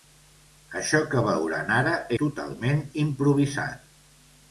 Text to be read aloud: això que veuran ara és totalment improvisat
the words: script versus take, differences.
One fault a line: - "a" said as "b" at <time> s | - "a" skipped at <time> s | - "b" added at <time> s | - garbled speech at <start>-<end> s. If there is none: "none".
- "és" skipped at 1.9 s